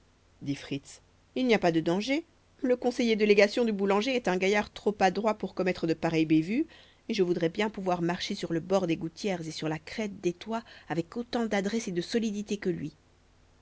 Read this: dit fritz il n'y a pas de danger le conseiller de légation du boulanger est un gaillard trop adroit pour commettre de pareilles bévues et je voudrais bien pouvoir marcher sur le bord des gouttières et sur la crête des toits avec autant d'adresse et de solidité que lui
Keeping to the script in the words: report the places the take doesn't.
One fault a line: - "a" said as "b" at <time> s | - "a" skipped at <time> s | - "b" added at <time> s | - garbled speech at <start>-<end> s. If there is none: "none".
none